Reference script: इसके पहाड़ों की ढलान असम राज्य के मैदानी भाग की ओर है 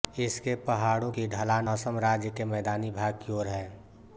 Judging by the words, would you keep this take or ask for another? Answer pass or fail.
pass